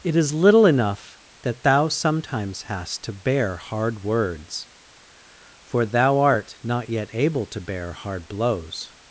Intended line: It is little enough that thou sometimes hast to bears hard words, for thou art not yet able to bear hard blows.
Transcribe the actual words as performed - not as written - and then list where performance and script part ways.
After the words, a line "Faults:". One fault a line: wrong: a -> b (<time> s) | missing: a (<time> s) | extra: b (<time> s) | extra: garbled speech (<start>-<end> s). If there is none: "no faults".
It is little enough that thou sometimes hast to bear hard words, for thou art not yet able to bear hard blows.
Faults:
wrong: bears -> bear (3.1 s)